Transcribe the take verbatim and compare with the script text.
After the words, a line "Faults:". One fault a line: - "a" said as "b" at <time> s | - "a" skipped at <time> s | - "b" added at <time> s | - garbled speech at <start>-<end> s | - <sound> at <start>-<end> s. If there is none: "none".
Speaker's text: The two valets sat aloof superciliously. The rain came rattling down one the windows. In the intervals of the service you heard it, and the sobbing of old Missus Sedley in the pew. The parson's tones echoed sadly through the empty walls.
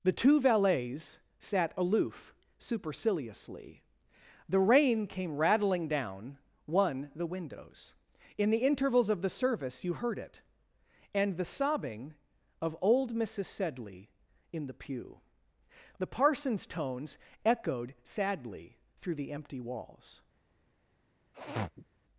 The two valets sat aloof superciliously. The rain came rattling down one the windows. In the intervals of the service you heard it, and the sobbing of old Missus Sedley in the pew. The parson's tones echoed sadly through the empty walls.
Faults:
- sniff at 21.3-21.9 s